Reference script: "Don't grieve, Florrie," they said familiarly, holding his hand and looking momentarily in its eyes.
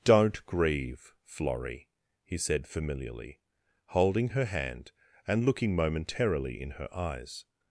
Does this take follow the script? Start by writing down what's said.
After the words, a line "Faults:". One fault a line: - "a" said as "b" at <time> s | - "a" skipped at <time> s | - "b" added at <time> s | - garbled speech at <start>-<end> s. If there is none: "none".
"Don't grieve, Florrie," he said familiarly, holding her hand and looking momentarily in her eyes.
Faults:
- "they" said as "he" at 2.2 s
- "his" said as "her" at 4.3 s
- "its" said as "her" at 6.7 s